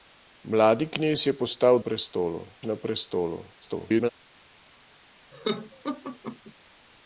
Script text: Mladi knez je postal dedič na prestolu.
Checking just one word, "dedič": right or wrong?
wrong